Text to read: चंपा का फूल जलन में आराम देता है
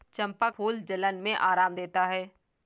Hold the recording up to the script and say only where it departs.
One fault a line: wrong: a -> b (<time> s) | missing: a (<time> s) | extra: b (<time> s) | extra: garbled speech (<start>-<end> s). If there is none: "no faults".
missing: का (0.5 s)